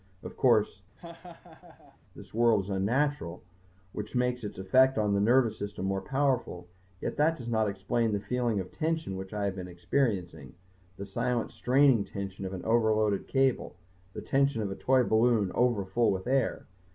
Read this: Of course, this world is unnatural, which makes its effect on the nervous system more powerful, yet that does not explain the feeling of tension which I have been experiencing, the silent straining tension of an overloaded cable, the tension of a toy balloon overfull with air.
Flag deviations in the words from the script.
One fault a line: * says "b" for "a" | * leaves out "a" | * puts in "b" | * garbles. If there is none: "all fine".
all fine